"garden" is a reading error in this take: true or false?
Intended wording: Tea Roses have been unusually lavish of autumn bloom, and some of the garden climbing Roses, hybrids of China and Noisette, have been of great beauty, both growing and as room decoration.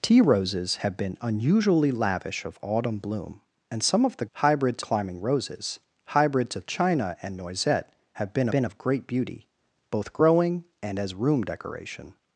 true